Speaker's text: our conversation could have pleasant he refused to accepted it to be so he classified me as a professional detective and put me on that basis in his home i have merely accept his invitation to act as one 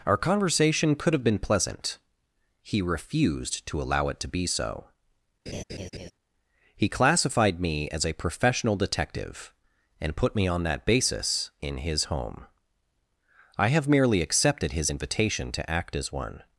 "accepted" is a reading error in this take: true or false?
true